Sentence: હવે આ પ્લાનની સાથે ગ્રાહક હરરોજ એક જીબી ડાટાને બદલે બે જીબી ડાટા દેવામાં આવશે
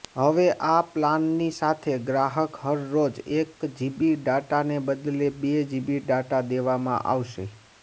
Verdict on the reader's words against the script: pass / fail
pass